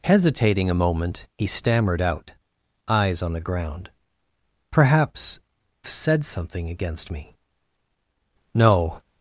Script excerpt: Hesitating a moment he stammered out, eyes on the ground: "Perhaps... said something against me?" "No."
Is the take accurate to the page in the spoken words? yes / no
yes